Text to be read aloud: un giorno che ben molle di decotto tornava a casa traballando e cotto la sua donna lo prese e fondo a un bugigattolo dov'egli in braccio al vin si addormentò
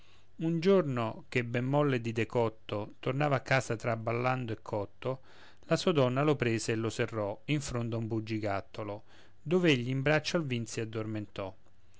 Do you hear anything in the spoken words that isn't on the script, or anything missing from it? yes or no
yes